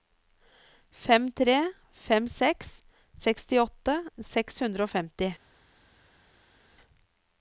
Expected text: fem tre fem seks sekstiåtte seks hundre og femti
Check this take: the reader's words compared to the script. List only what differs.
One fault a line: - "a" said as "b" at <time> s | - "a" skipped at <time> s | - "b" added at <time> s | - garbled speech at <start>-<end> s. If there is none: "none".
none